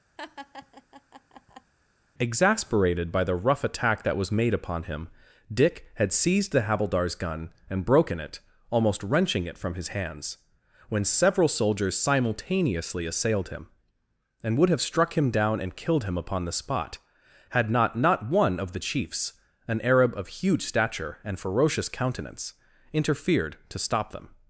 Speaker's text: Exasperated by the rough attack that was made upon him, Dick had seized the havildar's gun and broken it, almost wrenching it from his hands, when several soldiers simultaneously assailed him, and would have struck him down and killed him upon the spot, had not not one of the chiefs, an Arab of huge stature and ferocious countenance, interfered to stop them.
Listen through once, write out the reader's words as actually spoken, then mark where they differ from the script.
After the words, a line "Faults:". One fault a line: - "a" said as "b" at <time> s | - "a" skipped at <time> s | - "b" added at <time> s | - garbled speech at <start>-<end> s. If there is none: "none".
Exasperated by the rough attack that was made upon him, Dick had seized the havildar's gun and broken it, almost wrenching it from his hands, when several soldiers simultaneously assailed him, and would have struck him down and killed him upon the spot, had not not one of the chiefs, an Arab of huge stature and ferocious countenance, interfered to stop them.
Faults:
none